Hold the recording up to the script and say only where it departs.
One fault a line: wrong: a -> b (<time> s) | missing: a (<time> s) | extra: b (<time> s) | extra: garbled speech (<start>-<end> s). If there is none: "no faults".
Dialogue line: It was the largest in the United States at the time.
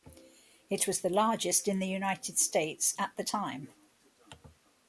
no faults